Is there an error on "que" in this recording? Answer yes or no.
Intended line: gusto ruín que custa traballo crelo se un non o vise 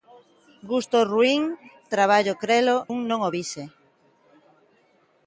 yes